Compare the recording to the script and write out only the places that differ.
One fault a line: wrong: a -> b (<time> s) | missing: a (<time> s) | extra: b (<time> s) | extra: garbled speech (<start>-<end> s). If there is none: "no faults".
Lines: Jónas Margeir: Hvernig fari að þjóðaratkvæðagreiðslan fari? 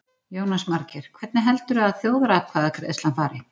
wrong: fari -> heldurðu (1.5 s)